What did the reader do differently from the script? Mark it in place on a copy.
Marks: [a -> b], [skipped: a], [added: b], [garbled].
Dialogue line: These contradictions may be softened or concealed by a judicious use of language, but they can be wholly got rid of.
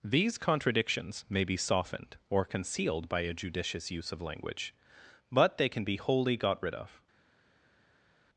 These contradictions may be softened or concealed by a judicious use of language, but they can be wholly got rid of.